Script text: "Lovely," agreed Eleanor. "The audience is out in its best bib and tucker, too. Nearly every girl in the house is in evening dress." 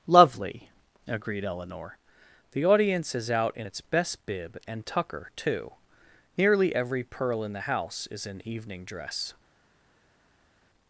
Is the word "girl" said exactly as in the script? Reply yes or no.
no